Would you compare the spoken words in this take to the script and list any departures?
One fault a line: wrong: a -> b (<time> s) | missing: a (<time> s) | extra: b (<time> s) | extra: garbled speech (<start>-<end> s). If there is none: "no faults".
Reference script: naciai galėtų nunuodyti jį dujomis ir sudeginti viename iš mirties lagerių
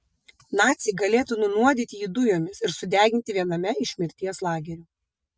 no faults